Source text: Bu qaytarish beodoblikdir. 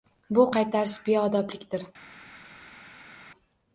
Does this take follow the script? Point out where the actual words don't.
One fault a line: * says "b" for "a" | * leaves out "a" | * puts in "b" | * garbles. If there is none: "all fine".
all fine